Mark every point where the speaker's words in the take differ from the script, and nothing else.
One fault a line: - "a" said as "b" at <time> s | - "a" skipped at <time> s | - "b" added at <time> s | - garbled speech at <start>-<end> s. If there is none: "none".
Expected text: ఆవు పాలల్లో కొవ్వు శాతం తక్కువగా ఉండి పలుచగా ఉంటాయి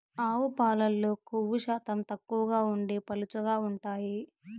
none